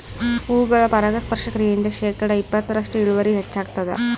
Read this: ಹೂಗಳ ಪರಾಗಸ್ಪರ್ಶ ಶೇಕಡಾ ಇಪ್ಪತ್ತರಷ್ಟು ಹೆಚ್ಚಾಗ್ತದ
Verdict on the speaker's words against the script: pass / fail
fail